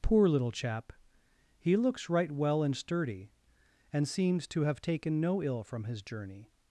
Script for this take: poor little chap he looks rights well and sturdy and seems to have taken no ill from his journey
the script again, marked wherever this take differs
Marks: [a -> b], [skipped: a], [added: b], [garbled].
poor little chap he looks [rights -> right] well and sturdy and seems to have taken no ill from his journey